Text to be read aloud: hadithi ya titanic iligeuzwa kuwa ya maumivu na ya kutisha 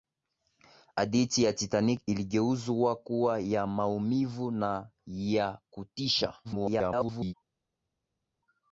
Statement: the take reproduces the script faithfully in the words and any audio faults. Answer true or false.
false